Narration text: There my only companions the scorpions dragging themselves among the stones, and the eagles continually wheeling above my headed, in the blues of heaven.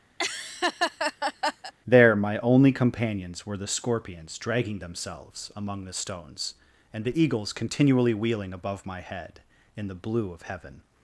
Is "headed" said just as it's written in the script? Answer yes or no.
no